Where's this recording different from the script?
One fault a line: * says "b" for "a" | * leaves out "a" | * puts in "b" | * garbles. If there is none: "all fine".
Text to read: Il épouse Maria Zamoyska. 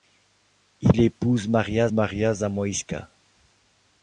* puts in "Maria"